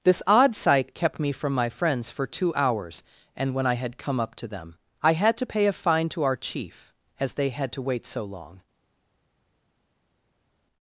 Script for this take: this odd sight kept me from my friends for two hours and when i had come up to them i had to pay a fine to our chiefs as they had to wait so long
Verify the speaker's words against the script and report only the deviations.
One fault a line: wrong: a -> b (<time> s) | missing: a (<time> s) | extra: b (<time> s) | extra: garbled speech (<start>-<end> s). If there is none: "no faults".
wrong: chiefs -> chief (6.4 s)